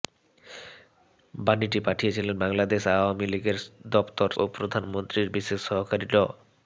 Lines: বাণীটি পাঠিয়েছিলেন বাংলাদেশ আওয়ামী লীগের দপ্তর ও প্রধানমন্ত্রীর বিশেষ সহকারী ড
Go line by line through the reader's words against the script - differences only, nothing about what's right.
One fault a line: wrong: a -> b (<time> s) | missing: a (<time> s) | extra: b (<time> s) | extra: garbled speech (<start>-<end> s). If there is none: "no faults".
no faults